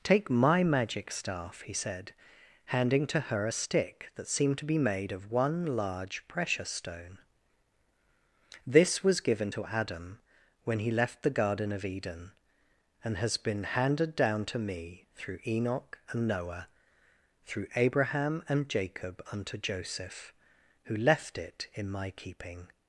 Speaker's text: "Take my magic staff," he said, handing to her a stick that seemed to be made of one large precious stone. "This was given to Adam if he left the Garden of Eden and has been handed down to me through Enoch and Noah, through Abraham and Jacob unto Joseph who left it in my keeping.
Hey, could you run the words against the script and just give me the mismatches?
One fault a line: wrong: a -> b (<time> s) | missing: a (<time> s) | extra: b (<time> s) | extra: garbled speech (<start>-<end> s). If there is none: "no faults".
wrong: if -> when (10.6 s)